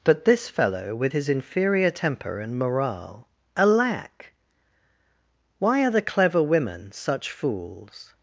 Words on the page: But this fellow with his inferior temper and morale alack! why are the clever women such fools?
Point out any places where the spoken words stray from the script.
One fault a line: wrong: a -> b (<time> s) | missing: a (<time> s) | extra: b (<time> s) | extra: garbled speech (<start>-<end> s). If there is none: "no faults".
no faults